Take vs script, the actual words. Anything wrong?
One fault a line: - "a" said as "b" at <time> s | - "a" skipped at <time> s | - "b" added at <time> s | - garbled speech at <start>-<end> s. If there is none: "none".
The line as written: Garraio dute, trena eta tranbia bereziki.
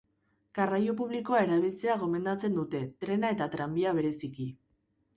- "publikoa erabiltzea gomendatzen" added at 1.0 s